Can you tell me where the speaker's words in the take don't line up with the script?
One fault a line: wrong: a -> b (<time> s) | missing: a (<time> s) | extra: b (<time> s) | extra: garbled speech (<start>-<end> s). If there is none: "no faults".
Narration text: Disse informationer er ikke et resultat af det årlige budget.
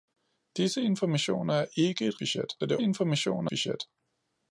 wrong: resultat -> budget (2.2 s)
wrong: årlige -> informationer (2.8 s)